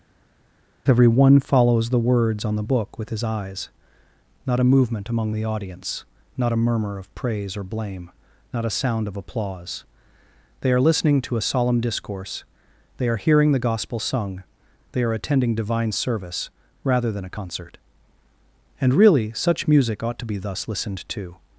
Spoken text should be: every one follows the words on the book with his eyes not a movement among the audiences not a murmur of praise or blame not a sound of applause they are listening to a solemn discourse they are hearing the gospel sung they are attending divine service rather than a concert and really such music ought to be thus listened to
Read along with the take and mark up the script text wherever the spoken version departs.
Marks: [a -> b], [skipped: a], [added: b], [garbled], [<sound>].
every one follows the words on the book with his eyes not a movement among the [audiences -> audience] not a murmur of praise or blame not a sound of applause they are listening to a solemn discourse they are hearing the gospel sung they are attending divine service rather than a concert and really such music ought to be thus listened to